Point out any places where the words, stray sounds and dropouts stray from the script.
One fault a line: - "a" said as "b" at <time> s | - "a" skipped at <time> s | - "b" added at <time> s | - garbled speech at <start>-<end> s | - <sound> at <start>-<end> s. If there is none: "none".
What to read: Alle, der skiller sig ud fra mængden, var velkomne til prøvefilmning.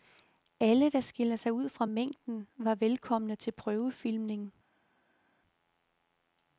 none